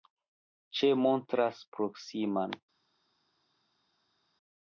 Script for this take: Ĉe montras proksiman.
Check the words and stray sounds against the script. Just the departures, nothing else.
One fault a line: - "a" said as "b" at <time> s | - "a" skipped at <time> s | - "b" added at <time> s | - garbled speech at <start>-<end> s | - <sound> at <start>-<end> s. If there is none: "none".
none